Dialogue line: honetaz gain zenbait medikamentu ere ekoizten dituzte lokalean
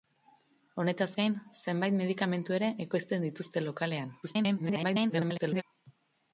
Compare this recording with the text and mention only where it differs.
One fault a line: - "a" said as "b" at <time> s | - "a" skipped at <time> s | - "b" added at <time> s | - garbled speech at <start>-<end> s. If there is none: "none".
- garbled speech at 4.2-5.6 s